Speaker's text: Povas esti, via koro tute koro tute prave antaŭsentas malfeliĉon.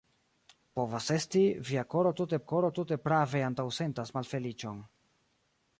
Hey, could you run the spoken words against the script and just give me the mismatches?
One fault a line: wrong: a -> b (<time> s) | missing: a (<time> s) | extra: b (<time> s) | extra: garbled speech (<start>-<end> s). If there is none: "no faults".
no faults